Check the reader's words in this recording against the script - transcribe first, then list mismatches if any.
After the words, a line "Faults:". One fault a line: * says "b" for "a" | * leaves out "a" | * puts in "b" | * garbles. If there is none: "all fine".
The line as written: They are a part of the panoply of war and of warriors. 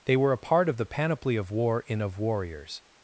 They were a part of the panoply of war in of warriors.
Faults:
* says "were" for "are"
* says "in" for "and"